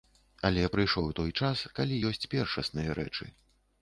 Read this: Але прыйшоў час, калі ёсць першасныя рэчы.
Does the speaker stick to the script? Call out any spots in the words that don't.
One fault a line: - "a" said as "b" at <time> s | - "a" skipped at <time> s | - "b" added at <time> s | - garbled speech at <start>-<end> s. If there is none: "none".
- "той" added at 1.2 s